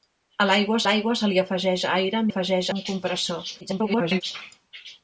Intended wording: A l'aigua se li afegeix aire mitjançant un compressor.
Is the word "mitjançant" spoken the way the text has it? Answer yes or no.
no